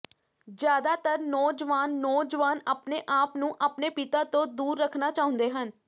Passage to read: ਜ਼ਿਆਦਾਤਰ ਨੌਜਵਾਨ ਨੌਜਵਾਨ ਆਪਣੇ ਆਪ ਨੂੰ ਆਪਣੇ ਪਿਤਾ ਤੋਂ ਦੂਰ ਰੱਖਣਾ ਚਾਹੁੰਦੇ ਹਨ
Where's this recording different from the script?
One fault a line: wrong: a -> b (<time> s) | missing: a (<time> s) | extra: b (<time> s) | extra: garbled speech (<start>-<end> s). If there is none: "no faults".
no faults